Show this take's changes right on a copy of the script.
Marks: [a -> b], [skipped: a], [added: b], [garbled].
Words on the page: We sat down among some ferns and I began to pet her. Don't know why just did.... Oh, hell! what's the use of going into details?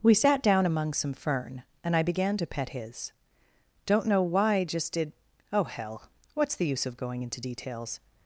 We sat down among some [ferns -> fern] and I began to pet [her. -> his] Don't know why just did.... Oh, hell! what's the use of going into details?